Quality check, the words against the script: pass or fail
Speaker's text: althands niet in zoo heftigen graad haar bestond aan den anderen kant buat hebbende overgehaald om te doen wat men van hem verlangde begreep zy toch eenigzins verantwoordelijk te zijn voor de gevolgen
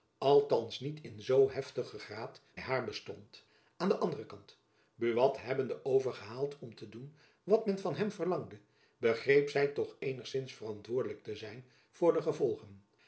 pass